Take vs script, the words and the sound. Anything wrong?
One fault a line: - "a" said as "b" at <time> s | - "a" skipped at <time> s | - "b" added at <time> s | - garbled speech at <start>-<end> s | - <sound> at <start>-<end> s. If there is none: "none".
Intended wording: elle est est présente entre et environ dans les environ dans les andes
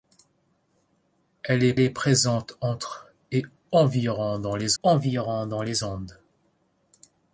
none